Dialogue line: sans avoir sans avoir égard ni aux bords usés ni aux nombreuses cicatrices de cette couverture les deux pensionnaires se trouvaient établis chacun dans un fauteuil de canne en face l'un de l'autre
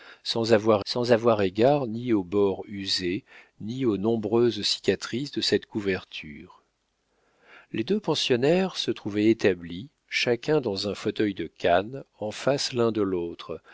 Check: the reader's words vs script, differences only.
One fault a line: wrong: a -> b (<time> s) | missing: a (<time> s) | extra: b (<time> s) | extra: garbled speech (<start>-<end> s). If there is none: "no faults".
no faults